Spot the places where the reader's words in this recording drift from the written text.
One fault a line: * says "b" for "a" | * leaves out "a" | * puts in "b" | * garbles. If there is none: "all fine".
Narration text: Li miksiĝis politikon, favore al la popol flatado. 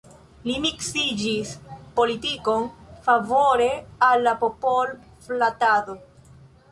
all fine